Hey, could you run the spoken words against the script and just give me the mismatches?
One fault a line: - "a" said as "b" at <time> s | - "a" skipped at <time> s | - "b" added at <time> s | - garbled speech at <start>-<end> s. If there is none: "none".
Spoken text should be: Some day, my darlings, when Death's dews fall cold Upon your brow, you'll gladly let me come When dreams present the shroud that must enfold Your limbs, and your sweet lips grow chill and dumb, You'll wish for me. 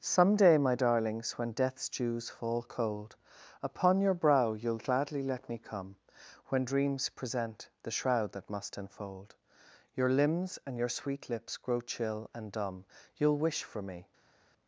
none